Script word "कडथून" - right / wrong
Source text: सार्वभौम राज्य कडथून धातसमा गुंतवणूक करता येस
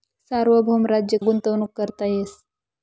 wrong